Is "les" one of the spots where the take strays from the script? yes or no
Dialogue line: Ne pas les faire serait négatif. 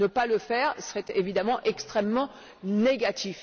yes